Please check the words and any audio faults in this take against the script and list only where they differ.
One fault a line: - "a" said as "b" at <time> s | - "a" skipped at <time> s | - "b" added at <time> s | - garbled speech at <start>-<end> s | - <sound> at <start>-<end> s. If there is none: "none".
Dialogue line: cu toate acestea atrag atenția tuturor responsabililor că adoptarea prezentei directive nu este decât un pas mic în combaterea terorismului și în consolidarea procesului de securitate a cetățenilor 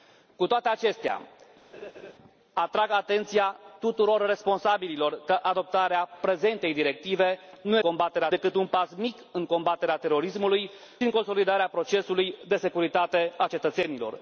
- laugh at 1.7-2.1 s
- "este" said as "combaterea" at 7.8 s
- "și" skipped at 10.7 s